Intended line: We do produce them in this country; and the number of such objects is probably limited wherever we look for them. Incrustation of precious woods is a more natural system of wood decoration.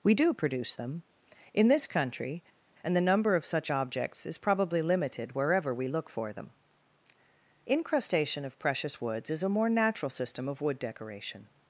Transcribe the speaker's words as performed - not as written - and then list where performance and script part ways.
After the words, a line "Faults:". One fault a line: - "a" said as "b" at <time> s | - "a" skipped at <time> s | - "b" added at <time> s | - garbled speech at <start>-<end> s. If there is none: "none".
We do produce them in this country; and the number of such objects is probably limited wherever we look for them. Incrustation of precious woods is a more natural system of wood decoration.
Faults:
none